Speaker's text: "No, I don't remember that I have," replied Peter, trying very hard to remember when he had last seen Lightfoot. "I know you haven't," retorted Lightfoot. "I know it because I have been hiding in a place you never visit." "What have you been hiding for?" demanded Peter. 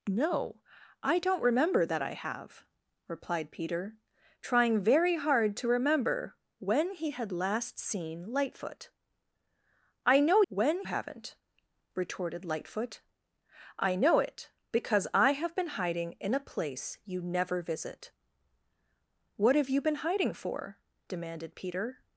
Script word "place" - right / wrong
right